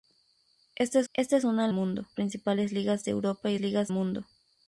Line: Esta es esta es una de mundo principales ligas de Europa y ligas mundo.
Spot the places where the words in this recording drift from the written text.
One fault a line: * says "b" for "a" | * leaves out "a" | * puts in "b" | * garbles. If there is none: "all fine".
all fine